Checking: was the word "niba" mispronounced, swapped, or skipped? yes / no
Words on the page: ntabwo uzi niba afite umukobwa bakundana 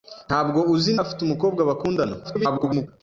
yes